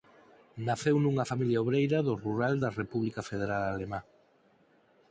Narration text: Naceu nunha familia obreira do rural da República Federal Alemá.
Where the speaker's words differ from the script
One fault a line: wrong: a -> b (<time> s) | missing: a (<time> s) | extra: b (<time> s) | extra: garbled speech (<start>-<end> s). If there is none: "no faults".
no faults